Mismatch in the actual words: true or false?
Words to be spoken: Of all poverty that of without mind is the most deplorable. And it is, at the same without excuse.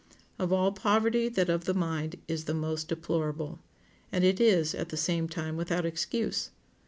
true